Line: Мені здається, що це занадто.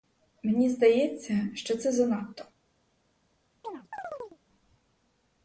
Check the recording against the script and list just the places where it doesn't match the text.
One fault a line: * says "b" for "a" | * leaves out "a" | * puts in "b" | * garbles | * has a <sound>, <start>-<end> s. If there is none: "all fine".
* has a chirp, 3.6-4.4 s